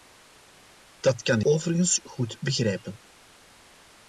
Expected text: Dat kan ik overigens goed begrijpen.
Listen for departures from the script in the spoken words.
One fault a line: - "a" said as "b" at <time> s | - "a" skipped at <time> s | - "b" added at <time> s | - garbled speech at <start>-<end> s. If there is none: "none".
- "ik" skipped at 1.4 s